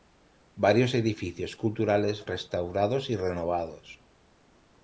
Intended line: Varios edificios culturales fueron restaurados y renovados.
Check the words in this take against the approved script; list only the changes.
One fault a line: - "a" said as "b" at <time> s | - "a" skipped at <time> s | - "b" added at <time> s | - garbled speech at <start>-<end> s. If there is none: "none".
- "fueron" skipped at 2.2 s